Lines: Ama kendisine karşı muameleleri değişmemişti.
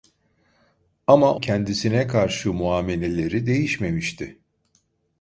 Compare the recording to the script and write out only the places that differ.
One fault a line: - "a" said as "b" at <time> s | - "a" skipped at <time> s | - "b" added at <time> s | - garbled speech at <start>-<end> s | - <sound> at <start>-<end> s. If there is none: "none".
none